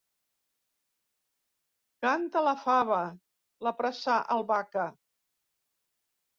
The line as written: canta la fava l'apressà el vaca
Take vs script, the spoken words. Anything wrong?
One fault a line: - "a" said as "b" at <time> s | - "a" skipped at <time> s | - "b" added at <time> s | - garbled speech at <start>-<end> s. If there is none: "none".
none